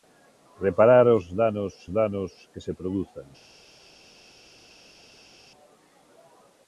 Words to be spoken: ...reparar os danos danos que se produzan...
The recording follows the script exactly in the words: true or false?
true